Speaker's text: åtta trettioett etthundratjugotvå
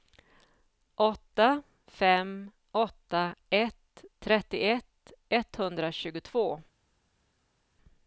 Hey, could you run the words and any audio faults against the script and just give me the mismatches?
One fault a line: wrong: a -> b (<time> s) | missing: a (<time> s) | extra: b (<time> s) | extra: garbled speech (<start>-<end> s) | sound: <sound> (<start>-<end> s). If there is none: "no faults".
extra: fem åtta ett (1.9 s)